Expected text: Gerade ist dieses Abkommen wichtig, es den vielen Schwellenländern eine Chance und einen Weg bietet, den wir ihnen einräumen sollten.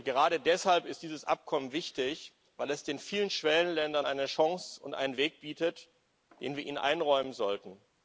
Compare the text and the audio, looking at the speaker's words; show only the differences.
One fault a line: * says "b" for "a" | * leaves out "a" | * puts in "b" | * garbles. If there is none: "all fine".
* puts in "deshalb"
* puts in "weil"